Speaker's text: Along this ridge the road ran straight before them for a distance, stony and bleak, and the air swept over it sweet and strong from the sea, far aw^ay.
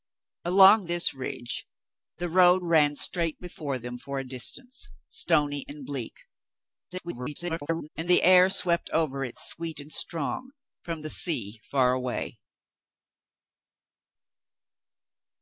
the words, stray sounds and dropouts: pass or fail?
fail